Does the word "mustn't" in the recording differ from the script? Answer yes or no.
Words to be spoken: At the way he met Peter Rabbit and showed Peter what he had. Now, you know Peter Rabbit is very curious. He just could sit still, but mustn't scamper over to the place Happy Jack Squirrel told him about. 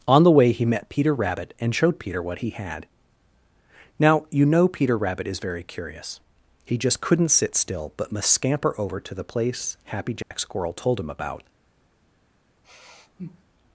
yes